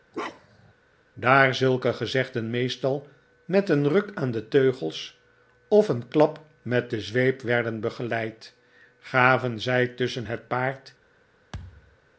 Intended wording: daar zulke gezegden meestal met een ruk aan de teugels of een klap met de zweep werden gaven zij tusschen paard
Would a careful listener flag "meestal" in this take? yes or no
no